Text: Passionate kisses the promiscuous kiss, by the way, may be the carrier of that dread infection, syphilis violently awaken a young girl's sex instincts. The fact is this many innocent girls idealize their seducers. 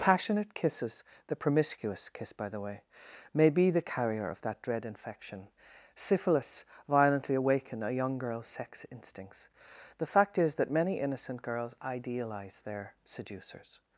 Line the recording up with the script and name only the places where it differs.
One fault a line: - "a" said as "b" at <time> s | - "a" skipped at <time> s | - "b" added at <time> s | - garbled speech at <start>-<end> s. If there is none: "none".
- "this" said as "that" at 10.6 s